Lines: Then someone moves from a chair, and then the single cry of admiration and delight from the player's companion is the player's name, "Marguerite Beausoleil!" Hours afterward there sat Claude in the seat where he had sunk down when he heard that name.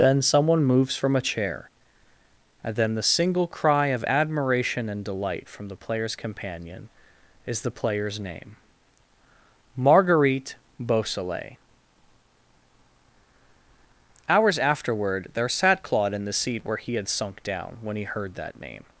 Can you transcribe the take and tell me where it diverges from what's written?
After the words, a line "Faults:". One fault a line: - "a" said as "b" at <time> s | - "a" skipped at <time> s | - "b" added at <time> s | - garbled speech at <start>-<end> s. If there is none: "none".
Then someone moves from a chair, and then the single cry of admiration and delight from the player's companion is the player's name, "Marguerite Beausoleil!" Hours afterward there sat Claude in the seat where he had sunk down when he heard that name.
Faults:
none